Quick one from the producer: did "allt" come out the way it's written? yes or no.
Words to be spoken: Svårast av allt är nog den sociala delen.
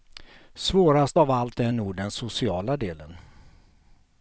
yes